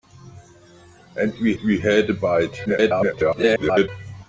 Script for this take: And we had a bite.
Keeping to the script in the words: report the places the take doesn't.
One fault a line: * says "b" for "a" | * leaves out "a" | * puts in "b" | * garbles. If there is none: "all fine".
* puts in "we"
* garbles